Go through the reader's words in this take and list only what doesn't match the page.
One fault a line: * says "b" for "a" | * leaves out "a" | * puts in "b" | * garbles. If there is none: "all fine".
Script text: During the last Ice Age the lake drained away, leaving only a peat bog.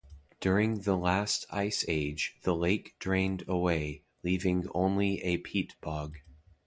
all fine